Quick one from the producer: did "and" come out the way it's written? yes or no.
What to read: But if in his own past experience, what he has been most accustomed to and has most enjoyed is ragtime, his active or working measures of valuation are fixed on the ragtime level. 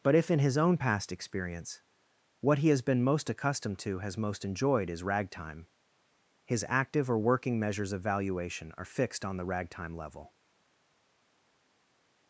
no